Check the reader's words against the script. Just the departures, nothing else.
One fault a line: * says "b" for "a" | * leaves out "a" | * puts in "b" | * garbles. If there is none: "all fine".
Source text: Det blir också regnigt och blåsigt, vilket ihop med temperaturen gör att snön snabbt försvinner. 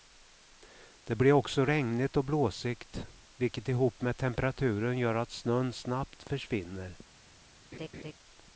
all fine